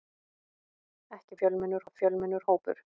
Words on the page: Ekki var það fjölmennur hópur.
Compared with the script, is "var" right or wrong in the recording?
wrong